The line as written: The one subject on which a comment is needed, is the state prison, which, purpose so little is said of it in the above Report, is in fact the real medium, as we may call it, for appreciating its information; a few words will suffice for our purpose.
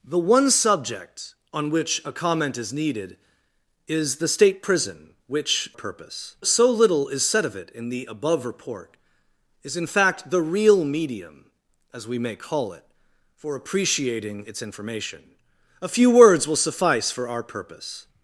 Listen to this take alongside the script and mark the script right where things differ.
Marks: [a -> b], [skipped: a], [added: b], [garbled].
The one subject on which a comment is needed, is the state prison, which, purpose so little is said of it in the above Report, is in fact the real medium, as we may call it, for appreciating its information; a few words will suffice for our purpose.